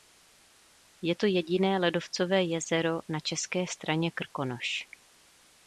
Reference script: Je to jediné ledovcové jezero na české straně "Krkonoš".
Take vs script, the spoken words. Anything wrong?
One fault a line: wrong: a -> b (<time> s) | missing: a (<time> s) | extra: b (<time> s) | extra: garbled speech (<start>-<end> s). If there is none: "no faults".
no faults